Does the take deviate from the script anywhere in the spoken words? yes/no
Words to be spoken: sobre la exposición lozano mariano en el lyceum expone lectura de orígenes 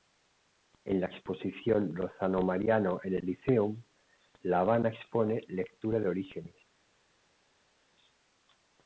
yes